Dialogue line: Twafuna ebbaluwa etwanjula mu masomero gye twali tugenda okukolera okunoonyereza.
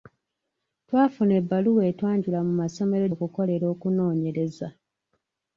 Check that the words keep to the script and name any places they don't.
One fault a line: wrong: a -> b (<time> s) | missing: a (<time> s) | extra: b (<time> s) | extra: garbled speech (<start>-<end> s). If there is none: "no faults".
missing: gye twali tugenda (3.0 s)